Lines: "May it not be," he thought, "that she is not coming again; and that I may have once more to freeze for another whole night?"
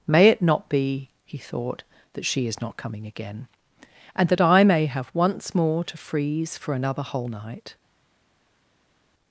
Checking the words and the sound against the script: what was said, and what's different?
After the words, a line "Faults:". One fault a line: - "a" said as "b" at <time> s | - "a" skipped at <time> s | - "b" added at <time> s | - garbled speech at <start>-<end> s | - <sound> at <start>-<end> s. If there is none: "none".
"May it not be," he thought, "that she is not coming again; and that I may have once more to freeze for another whole night?"
Faults:
none